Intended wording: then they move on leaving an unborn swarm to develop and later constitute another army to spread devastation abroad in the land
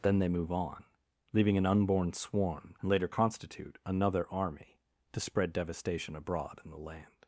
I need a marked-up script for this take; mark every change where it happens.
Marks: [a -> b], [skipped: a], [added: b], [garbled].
then they move on leaving an unborn swarm [skipped: to develop] and later constitute another army to spread devastation abroad in the land